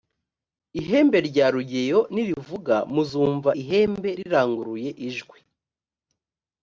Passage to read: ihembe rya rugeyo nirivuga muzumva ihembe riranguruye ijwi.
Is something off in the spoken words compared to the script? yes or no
no